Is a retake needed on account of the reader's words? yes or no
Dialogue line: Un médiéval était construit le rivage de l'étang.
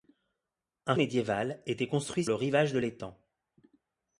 no